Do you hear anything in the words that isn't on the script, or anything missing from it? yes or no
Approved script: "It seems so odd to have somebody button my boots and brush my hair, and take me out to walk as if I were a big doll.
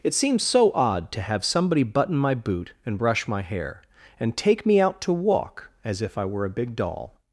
yes